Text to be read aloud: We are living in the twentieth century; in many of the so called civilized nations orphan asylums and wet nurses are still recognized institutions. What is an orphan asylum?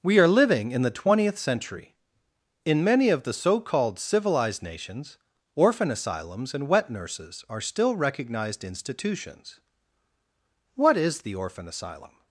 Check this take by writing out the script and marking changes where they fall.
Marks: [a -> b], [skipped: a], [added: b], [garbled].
We are living in the twentieth century; in many of the so called civilized nations orphan asylums and wet nurses are still recognized institutions. What is [an -> the] orphan asylum?